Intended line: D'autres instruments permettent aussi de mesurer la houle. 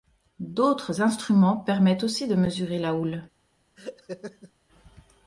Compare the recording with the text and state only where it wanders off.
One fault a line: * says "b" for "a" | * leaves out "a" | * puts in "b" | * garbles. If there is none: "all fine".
all fine